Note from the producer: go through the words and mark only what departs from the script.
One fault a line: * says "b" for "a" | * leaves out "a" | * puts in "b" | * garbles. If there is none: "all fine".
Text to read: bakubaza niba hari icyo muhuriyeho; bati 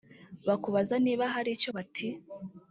* leaves out "muhuriyeho"